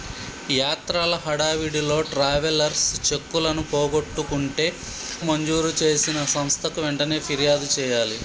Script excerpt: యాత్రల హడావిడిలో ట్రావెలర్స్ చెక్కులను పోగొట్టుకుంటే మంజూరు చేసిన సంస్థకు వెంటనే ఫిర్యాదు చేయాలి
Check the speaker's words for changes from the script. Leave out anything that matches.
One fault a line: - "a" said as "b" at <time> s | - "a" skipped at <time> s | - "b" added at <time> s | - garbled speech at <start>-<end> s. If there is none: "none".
none